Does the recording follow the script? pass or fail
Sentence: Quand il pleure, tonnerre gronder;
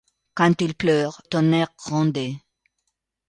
pass